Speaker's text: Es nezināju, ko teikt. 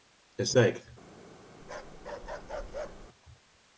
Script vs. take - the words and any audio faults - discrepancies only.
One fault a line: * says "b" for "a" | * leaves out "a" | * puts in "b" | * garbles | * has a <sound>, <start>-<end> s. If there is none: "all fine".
* leaves out "nezināju ko"
* has a bark, 1.6-3.1 s